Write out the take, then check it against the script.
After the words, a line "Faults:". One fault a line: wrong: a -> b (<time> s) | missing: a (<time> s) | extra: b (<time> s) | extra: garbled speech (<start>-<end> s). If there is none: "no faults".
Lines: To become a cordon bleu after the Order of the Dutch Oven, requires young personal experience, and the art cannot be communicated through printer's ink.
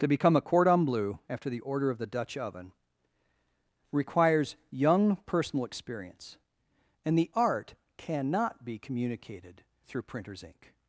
To become a cordon bleu after the Order of the Dutch Oven, requires young personal experience, and the art cannot be communicated through printer's ink.
Faults:
no faults